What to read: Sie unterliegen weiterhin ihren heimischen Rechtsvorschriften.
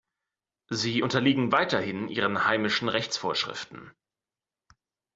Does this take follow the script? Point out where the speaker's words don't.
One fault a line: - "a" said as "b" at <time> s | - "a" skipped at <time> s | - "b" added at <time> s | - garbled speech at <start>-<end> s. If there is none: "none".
none